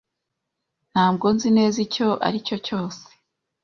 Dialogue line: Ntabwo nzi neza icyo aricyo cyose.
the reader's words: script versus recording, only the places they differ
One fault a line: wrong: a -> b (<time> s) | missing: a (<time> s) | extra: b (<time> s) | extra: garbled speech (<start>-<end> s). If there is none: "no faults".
no faults